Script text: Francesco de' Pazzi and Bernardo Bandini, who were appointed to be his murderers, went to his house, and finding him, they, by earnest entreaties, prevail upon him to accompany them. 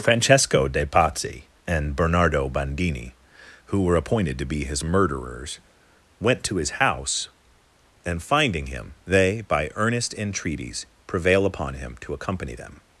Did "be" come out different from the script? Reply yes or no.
no